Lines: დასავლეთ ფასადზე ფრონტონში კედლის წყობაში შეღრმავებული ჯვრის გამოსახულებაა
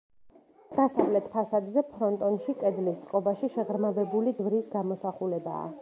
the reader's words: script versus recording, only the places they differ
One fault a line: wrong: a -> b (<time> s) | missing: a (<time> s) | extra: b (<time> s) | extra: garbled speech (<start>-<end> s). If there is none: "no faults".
no faults